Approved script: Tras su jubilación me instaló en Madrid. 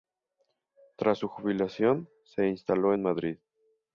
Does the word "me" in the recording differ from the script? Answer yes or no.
yes